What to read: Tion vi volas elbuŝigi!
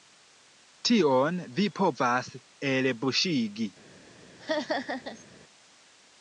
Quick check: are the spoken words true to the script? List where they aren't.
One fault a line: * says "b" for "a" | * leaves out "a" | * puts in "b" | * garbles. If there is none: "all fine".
* says "povas" for "volas"